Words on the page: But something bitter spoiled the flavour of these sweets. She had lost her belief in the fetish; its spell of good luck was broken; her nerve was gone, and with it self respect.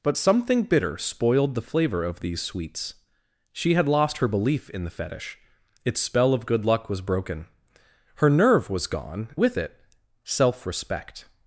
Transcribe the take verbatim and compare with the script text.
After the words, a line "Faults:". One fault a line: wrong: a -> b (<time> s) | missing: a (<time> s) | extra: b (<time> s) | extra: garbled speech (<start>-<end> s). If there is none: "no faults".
But something bitter spoiled the flavour of these sweets. She had lost her belief in the fetish; its spell of good luck was broken; her nerve was gone, with it self respect.
Faults:
missing: and (9.4 s)